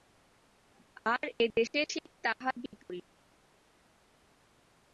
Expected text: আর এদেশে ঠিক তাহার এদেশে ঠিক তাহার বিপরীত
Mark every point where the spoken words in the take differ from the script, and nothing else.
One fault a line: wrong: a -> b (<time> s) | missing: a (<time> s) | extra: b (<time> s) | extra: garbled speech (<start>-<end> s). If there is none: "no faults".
missing: এদেশে ঠিক তাহার (2.5 s)